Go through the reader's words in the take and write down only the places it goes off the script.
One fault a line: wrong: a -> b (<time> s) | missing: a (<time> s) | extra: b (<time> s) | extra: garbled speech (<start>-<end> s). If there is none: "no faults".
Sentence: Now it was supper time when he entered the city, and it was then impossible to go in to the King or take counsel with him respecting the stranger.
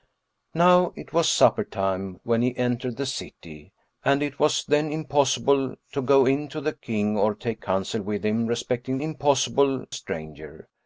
wrong: the -> impossible (9.0 s)